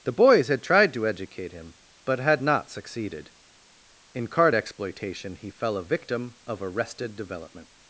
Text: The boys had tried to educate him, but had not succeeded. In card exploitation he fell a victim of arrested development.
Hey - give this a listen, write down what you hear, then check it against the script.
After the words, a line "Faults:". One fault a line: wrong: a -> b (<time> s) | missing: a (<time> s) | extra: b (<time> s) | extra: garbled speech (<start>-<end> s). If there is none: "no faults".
The boys had tried to educate him, but had not succeeded. In card exploitation he fell a victim of arrested development.
Faults:
no faults